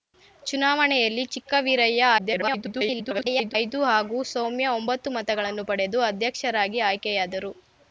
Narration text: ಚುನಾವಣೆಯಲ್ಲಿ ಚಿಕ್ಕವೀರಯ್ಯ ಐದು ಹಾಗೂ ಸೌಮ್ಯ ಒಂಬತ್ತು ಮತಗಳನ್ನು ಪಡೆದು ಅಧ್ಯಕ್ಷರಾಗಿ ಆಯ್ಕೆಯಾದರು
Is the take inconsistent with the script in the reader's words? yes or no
yes